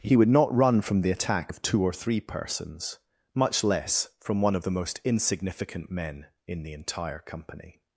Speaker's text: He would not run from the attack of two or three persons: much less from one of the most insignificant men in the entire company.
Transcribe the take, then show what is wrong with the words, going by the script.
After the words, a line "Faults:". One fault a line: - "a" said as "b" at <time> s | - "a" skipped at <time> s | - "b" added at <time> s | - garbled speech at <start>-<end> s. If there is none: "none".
He would not run from the attack of two or three persons: much less from one of the most insignificant men in the entire company.
Faults:
none